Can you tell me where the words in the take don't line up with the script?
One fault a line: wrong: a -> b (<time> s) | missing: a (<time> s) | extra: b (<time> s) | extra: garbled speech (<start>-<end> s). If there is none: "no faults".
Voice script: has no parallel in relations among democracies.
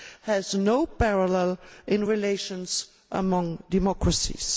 no faults